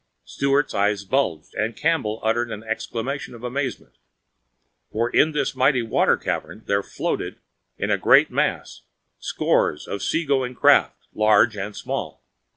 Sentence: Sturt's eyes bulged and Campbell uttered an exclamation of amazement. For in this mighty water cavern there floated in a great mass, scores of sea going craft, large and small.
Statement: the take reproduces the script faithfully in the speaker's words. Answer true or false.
true